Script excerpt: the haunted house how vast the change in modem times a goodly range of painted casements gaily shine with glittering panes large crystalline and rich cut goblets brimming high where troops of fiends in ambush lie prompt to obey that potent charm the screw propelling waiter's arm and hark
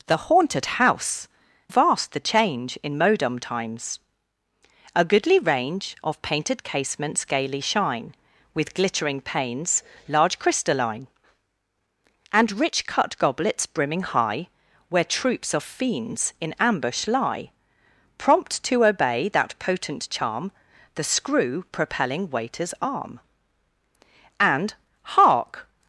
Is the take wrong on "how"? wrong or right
wrong